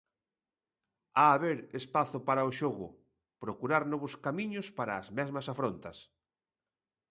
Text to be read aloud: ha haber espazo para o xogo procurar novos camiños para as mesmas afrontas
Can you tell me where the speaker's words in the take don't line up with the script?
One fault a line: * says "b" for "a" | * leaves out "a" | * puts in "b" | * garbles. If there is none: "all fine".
all fine